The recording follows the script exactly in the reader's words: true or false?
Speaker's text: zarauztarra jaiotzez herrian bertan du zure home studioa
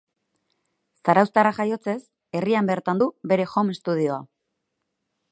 false